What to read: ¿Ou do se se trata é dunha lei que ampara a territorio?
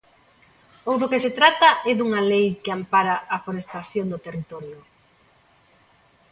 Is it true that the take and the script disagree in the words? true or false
true